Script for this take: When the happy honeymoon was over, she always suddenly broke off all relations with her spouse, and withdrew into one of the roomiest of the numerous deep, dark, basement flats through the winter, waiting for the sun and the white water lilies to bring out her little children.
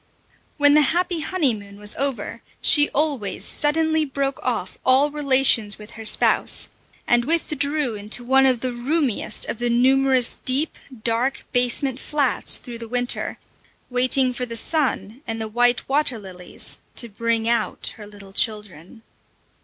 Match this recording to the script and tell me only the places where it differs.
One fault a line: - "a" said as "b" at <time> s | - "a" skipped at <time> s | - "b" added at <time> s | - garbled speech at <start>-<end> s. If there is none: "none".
none